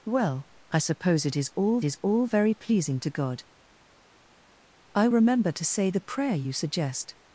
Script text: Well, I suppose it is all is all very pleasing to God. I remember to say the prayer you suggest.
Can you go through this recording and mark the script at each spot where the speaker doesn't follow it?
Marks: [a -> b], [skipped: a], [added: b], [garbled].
Well, I suppose it is all is all very pleasing to God. I remember to say the prayer you suggest.